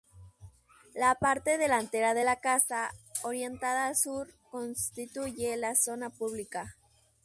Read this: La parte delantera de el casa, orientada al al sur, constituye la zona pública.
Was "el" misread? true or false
true